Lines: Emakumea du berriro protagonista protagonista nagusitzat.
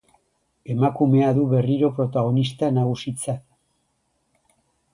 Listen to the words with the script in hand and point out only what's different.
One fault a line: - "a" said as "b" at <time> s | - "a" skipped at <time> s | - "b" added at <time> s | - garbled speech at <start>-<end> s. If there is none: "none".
- "protagonista" skipped at 2.7 s